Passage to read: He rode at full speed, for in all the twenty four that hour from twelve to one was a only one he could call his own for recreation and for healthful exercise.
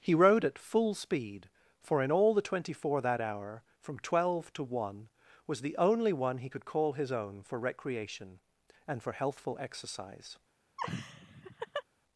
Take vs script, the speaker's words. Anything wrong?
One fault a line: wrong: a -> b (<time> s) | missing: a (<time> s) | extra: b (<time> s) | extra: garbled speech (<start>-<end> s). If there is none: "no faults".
wrong: a -> the (5.6 s)